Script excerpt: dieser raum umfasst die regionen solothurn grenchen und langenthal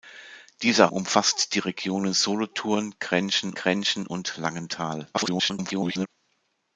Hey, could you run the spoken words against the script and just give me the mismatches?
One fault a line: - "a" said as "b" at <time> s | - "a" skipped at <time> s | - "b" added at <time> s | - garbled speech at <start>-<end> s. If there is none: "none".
- "raum" skipped at 0.9 s
- "grenchen" added at 3.5 s
- garbled speech at 5.1-6.1 s